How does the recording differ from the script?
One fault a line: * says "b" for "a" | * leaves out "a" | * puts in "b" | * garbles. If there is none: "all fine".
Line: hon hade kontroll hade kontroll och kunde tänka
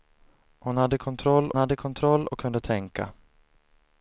all fine